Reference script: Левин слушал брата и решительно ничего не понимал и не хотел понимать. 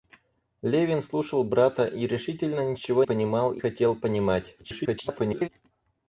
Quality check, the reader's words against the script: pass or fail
fail